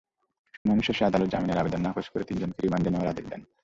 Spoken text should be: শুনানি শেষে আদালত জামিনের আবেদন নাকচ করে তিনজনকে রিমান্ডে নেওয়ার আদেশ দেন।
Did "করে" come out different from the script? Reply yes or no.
no